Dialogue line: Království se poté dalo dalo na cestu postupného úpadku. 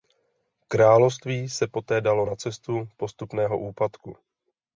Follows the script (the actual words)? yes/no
no